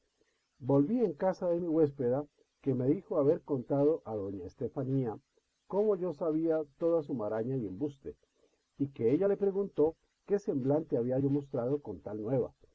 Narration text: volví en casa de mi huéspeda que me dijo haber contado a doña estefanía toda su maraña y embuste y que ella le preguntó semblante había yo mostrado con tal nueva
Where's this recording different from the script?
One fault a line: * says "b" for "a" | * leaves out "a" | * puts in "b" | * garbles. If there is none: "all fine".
* puts in "cómo yo sabía"
* puts in "qué"